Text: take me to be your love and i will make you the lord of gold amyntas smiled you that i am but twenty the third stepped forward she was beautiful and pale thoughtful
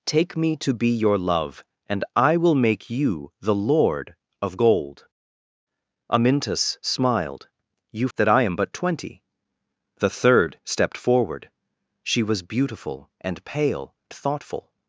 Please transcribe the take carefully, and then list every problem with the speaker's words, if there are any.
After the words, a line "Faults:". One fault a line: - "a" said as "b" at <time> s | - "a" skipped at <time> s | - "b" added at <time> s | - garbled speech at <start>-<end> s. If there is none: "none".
take me to be your love and i will make you the lord of gold amyntas smiled you that i am but twenty the third stepped forward she was beautiful and pale thoughtful
Faults:
none